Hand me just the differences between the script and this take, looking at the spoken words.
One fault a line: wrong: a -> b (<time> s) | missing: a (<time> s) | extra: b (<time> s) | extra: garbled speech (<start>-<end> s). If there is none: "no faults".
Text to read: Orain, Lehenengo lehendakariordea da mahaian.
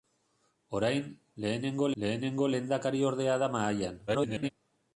extra: Lehenengo (2.0 s)
extra: garbled speech (4.1-4.5 s)